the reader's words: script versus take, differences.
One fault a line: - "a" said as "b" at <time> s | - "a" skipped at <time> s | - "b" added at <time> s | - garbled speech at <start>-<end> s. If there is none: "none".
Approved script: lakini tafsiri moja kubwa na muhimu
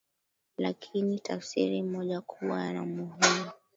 none